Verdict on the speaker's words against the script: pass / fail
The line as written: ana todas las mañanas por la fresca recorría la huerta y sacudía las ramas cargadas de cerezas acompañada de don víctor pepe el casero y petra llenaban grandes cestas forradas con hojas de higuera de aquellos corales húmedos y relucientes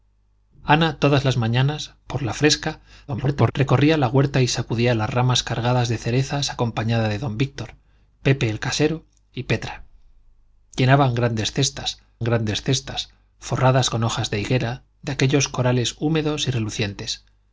fail